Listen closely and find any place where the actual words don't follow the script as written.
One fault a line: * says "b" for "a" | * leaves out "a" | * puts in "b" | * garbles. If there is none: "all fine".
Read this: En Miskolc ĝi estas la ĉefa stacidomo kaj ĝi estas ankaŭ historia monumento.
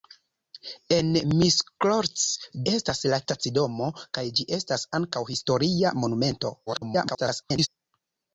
* leaves out "ĝi"
* leaves out "ĉefa"
* garbles